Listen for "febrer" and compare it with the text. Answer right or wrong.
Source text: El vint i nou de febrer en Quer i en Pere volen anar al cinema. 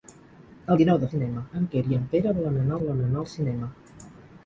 wrong